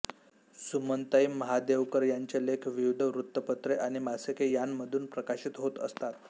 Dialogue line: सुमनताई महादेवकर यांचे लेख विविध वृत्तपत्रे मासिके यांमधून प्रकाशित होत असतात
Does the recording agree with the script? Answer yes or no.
no